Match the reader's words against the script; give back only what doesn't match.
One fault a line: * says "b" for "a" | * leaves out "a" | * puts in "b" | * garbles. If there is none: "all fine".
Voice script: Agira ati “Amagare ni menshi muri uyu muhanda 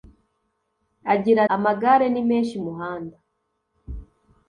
* leaves out "ati"
* leaves out "muri uyu"